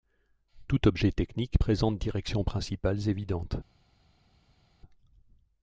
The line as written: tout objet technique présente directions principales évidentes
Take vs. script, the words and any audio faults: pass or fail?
pass